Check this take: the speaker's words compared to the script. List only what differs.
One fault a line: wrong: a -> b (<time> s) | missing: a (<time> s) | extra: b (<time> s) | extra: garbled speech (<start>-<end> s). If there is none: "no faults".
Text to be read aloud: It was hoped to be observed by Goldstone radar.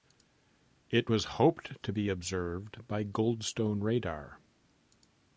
no faults